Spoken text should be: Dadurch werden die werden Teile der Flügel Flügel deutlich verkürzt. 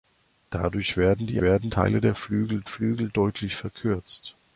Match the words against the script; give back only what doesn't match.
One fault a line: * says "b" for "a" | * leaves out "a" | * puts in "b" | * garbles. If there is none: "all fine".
all fine